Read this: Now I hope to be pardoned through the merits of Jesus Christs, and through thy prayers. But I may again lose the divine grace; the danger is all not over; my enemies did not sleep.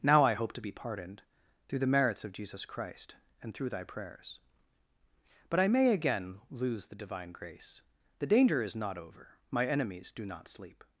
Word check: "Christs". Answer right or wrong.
wrong